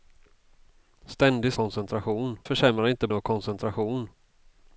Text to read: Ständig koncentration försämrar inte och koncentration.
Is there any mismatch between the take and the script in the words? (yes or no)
no